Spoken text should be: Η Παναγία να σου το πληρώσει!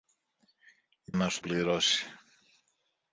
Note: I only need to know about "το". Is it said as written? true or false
false